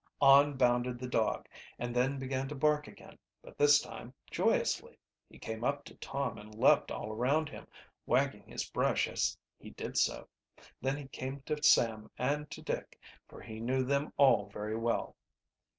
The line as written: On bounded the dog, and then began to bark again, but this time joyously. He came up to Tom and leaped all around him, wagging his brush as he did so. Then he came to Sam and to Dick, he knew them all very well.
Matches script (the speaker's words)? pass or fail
fail